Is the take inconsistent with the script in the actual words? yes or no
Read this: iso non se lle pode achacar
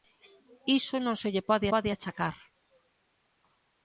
yes